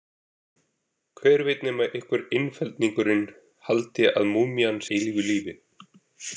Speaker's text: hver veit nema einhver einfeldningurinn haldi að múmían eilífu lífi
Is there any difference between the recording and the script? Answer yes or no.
no